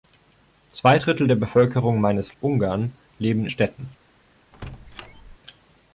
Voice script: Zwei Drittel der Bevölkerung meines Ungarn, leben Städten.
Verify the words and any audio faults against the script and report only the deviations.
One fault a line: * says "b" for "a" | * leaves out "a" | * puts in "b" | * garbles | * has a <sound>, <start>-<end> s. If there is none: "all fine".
* has a squeak, 4.5-5.4 s